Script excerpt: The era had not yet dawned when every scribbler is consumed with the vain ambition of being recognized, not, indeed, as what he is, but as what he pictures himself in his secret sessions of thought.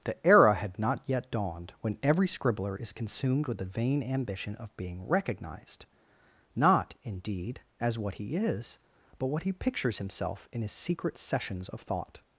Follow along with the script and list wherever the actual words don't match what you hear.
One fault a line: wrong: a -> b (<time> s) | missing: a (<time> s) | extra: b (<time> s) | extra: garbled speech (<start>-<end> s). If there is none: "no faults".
missing: as (9.3 s)